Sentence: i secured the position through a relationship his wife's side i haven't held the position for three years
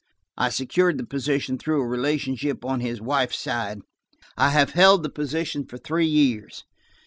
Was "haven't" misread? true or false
true